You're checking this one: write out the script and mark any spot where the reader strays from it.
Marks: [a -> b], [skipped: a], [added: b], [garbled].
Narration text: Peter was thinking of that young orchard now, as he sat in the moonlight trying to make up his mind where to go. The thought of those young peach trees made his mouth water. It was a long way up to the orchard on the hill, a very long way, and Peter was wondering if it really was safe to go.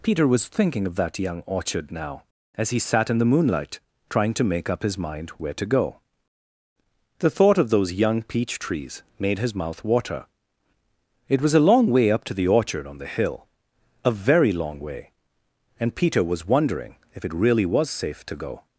Peter was thinking of that young orchard now, as he sat in the moonlight trying to make up his mind where to go. The thought of those young peach trees made his mouth water. It was a long way up to the orchard on the hill, a very long way, and Peter was wondering if it really was safe to go.